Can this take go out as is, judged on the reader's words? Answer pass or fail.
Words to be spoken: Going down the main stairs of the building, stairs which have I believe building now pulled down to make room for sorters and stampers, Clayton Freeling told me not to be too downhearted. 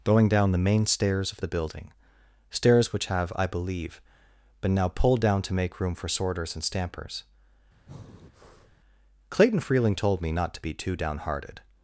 fail